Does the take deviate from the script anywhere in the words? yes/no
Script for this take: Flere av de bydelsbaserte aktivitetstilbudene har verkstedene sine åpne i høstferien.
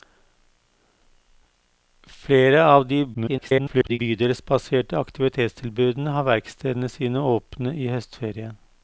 yes